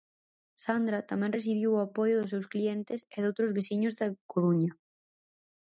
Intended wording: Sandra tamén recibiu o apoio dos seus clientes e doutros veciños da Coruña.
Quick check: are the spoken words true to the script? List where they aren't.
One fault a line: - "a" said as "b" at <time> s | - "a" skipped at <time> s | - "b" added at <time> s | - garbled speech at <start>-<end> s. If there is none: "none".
none